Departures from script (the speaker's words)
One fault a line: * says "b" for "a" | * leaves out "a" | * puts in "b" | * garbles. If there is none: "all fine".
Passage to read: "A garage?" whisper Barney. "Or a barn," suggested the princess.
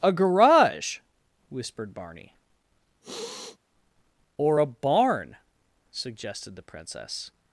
* says "whispered" for "whisper"